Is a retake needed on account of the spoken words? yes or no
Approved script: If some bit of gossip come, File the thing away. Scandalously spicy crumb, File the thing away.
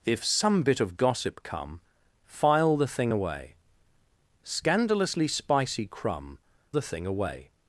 yes